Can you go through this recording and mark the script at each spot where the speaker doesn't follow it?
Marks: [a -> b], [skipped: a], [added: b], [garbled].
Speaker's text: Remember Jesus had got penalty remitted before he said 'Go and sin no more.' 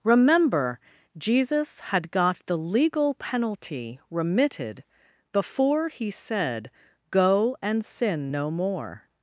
Remember Jesus had got [added: the legal] penalty remitted before he said 'Go and sin no more.'